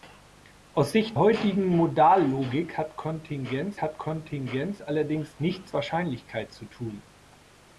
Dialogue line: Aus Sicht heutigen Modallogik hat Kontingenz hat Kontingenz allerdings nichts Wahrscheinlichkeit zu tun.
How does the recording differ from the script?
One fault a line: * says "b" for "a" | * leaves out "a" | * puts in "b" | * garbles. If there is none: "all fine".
all fine